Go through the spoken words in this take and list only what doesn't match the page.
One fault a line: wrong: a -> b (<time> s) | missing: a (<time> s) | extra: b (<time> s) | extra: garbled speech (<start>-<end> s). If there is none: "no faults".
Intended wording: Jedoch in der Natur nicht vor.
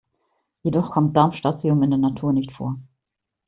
extra: kommt Darmstadtium (0.9 s)